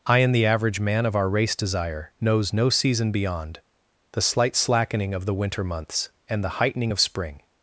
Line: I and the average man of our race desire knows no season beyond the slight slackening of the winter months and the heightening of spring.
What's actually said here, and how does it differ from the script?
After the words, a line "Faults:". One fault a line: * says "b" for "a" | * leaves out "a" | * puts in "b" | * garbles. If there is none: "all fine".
I and the average man of our race desire knows no season beyond the slight slackening of the winter months and the heightening of spring.
Faults:
all fine